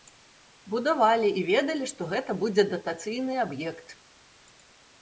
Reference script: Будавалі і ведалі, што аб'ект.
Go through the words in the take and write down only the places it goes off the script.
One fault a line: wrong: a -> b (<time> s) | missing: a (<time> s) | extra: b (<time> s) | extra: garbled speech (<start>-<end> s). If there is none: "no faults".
extra: гэта будзе датацыйны (2.1 s)